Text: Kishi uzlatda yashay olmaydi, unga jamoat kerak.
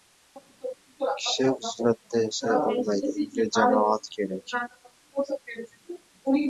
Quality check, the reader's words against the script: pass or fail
pass